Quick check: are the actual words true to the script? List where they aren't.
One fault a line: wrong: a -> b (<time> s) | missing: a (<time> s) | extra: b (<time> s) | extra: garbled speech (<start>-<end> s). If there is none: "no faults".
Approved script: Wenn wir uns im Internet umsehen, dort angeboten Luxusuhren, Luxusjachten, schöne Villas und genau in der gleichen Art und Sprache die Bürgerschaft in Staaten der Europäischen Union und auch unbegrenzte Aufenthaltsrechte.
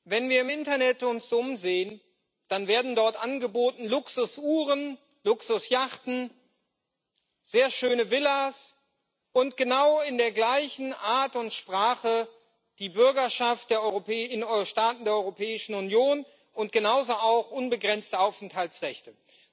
extra: dann werden (2.5 s)
extra: sehr (7.4 s)
extra: genauso (16.7 s)